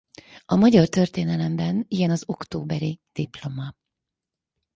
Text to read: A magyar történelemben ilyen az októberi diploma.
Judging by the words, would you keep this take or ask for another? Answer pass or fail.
pass